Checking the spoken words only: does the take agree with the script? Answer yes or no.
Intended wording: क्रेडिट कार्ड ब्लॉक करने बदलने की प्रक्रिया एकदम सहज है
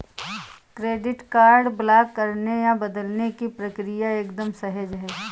no